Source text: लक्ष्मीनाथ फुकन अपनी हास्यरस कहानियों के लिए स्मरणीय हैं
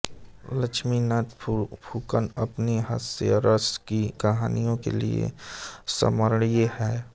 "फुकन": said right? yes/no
yes